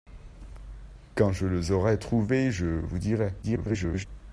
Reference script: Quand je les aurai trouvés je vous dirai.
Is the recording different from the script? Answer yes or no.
yes